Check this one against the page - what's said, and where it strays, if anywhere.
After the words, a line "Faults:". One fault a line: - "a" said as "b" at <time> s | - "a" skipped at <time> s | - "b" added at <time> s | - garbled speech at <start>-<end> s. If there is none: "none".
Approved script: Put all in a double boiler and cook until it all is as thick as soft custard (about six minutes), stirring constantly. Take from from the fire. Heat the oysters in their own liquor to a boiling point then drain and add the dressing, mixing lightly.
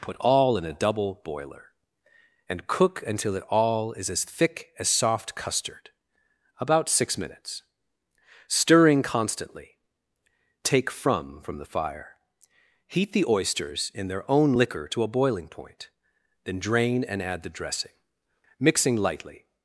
Put all in a double boiler and cook until it all is as thick as soft custard (about six minutes), stirring constantly. Take from from the fire. Heat the oysters in their own liquor to a boiling point then drain and add the dressing, mixing lightly.
Faults:
none